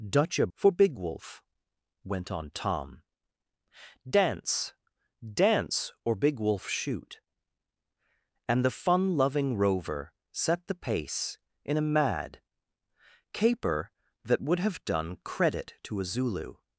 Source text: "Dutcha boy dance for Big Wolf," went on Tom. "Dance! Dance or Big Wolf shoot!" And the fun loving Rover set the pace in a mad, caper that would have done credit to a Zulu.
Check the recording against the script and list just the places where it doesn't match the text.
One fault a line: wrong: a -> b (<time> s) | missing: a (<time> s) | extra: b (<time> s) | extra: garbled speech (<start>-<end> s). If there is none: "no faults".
missing: boy dance (0.5 s)